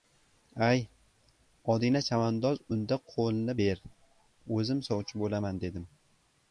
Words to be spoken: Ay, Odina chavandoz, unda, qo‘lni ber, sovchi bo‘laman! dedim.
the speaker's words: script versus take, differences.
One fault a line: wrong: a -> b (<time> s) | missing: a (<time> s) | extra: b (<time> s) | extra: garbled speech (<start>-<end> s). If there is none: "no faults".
extra: o‘zim (4.6 s)